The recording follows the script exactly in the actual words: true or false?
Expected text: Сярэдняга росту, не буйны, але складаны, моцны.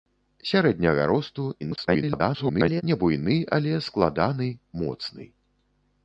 false